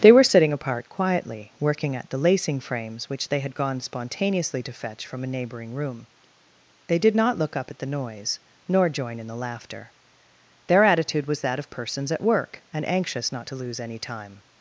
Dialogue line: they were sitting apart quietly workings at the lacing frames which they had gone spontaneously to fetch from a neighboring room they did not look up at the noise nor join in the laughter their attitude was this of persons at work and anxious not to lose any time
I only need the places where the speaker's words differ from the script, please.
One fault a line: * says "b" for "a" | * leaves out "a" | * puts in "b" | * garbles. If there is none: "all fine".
* says "working" for "workings"
* says "that" for "this"